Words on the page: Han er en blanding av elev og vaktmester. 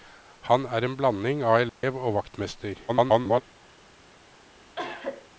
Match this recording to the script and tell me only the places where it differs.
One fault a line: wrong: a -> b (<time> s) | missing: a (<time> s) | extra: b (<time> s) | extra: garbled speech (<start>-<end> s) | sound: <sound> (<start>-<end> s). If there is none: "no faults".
sound: dropout (1.7-1.8 s)
extra: garbled speech (2.9-3.4 s)
sound: cough (4.8-5.3 s)